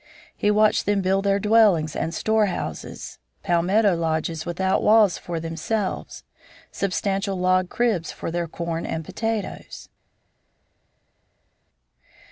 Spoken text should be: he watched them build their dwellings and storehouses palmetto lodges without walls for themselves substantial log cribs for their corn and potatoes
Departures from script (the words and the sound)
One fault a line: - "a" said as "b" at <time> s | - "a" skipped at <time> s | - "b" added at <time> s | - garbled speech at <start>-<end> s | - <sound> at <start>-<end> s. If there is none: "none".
none